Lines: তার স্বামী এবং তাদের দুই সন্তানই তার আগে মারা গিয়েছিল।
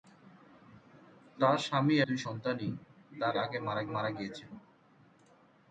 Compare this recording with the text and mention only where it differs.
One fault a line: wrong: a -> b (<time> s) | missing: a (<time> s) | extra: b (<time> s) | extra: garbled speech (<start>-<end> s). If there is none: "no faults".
missing: এবং তাদের (1.9 s)
extra: মারা (3.9 s)